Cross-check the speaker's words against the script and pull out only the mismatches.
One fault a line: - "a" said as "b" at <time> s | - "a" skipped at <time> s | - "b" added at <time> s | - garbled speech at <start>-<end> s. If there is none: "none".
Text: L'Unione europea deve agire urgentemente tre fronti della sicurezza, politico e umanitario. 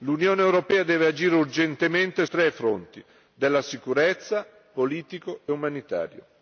none